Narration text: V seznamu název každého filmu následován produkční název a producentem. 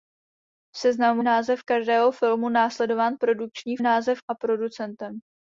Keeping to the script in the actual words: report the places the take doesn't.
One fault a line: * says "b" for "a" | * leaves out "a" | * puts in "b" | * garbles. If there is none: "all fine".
all fine